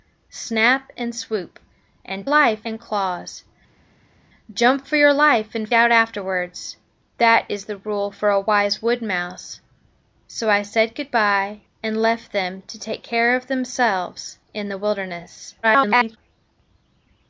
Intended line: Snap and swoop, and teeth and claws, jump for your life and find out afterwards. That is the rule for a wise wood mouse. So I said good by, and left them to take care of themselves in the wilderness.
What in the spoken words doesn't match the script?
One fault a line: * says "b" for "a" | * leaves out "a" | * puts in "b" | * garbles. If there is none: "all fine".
* says "life" for "teeth"
* leaves out "find"
* garbles